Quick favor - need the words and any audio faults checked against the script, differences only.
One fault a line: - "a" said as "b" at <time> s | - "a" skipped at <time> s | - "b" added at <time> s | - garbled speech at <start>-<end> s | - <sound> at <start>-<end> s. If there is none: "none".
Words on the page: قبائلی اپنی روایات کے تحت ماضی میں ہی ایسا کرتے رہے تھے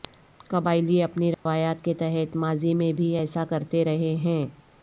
- dropout at 1.3-1.5 s
- "ہی" said as "بھی" at 2.9 s
- "تھے" said as "ہیں" at 4.2 s